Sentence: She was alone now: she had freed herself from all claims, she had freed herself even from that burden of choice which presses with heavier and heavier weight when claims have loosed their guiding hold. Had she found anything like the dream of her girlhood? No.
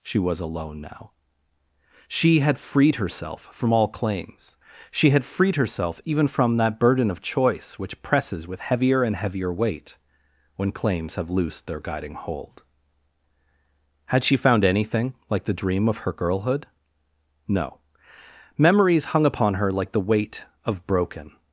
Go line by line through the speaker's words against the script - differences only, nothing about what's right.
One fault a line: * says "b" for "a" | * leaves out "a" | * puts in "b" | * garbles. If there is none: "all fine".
* puts in "Memories hung upon her like the weight of broken"